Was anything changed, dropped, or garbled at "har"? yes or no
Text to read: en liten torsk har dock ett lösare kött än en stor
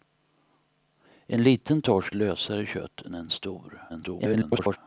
yes